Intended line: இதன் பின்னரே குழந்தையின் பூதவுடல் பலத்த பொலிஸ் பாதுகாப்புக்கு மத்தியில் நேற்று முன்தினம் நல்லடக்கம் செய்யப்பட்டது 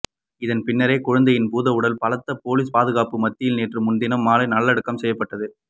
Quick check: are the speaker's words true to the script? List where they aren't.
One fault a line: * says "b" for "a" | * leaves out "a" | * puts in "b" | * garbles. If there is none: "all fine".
* puts in "மாலை"